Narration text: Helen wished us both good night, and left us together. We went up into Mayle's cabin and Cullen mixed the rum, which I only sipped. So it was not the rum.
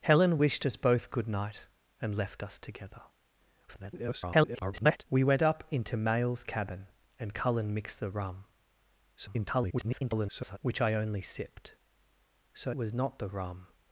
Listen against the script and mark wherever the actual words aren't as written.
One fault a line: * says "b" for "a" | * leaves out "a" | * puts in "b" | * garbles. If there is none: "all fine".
* garbles
* garbles
* leaves out "it"